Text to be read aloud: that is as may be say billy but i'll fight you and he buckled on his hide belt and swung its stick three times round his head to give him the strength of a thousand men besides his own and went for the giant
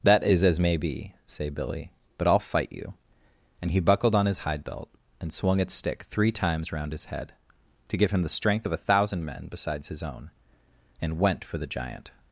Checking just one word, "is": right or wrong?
right